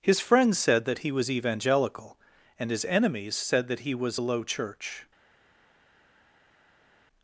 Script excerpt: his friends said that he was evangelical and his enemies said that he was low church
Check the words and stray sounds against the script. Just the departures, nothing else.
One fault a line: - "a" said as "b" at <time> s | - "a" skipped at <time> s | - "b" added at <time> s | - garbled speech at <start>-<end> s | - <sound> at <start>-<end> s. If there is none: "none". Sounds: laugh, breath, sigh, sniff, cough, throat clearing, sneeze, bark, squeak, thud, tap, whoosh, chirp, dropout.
- "a" added at 4.2 s